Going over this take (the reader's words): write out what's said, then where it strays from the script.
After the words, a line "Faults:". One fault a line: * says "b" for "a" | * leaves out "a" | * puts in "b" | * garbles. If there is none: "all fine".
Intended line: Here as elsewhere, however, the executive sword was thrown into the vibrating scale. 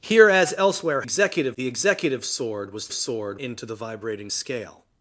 Here as elsewhere, executive, the executive sword was sword into the vibrating scale.
Faults:
* says "executive" for "however"
* says "sword" for "thrown"